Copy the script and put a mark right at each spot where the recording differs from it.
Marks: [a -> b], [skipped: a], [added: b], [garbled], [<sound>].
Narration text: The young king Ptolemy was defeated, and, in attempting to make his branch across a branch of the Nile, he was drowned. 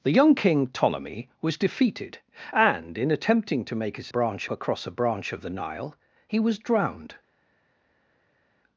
The young king Ptolemy was defeated, and, in attempting to make his branch across a branch of the Nile, he was drowned.